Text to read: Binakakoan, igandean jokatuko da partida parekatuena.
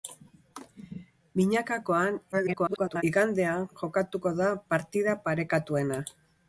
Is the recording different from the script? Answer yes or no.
yes